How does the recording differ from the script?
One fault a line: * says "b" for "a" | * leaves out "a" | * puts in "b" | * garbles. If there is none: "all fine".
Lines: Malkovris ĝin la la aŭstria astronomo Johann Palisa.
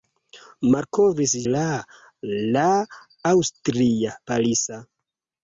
* leaves out "ĝin"
* leaves out "astronomo Johann"